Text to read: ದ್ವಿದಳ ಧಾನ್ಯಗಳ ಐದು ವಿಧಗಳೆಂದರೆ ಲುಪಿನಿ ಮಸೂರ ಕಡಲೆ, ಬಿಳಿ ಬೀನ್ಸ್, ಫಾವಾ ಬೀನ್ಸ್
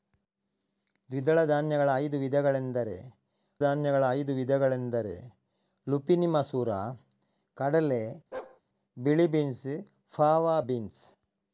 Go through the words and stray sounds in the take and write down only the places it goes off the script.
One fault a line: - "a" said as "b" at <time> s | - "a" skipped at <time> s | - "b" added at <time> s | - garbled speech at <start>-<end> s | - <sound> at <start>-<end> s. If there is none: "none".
- "ಧಾನ್ಯಗಳ ಐದು ವಿಧಗಳೆಂದರೆ" added at 3.6 s
- bark at 8.3-8.6 s